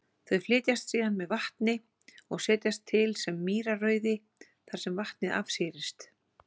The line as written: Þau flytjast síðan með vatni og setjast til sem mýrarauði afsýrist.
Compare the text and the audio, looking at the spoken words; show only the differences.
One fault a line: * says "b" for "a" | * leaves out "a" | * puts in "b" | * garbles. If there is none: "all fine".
* puts in "þar sem vatnið"